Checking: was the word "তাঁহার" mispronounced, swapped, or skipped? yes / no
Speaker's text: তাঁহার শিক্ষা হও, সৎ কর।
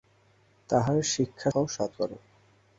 no